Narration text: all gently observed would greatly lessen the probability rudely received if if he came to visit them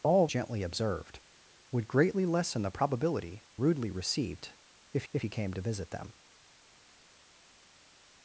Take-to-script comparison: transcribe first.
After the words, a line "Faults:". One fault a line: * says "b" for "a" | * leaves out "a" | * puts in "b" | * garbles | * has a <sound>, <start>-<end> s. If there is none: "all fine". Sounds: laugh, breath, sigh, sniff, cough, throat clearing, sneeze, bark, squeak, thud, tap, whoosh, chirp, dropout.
all gently observed would greatly lessen the probability rudely received if if he came to visit them
Faults:
all fine